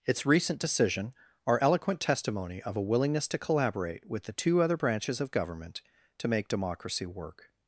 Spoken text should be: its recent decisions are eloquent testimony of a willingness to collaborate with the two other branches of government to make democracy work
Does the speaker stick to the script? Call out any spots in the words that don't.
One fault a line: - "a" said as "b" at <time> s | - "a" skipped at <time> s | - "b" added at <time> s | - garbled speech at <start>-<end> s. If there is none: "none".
- "decisions" said as "decision" at 0.6 s